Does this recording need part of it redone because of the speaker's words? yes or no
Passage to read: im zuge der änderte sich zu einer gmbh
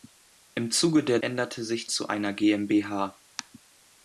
no